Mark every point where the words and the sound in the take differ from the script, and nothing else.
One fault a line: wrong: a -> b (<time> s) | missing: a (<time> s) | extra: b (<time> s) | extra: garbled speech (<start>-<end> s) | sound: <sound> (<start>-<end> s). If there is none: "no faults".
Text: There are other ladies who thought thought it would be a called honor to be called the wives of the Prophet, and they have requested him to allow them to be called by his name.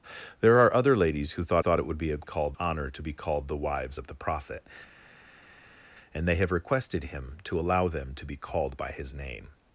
no faults